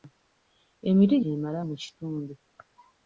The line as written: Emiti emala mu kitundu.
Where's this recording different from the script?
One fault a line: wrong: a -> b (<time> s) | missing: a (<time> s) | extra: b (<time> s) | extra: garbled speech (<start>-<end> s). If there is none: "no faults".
no faults